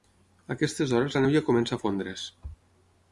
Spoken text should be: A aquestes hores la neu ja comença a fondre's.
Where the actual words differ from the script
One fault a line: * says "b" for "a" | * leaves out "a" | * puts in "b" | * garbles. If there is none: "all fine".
all fine